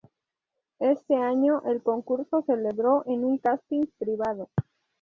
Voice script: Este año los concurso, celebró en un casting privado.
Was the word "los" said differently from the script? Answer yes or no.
yes